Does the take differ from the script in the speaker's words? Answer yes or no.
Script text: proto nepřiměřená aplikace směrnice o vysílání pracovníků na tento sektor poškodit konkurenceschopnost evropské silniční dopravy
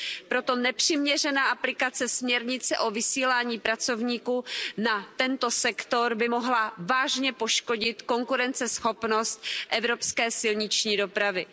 yes